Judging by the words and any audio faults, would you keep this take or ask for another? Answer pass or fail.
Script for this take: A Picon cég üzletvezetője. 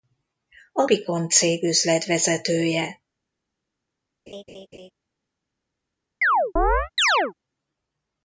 fail